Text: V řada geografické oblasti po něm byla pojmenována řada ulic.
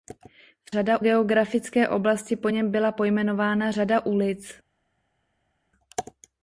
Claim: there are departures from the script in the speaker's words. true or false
false